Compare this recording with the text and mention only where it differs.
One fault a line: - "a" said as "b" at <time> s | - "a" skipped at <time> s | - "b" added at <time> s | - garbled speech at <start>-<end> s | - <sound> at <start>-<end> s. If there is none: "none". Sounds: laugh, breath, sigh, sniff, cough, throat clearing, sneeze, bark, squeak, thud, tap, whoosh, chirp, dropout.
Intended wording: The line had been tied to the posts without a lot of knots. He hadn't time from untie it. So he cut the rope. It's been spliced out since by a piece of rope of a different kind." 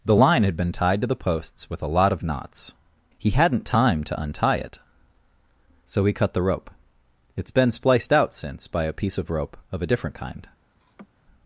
- "without" said as "with" at 1.7 s
- "from" said as "to" at 4.0 s
- laugh at 10.8-11.1 s